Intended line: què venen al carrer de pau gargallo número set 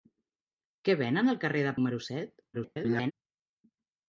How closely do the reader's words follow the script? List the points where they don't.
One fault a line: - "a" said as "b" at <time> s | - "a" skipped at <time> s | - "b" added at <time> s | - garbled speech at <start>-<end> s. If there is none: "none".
- "pau gargallo" skipped at 1.8 s
- garbled speech at 2.5-3.1 s